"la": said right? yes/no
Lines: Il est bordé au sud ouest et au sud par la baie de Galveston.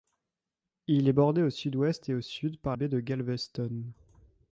no